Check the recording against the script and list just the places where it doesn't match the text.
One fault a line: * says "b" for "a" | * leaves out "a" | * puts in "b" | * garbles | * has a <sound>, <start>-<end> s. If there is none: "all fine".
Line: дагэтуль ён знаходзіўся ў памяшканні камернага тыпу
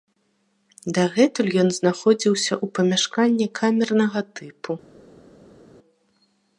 all fine